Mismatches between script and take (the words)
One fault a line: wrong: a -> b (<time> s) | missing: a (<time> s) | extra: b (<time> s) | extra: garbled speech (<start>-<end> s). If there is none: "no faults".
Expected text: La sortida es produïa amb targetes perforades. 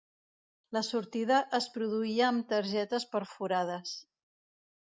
no faults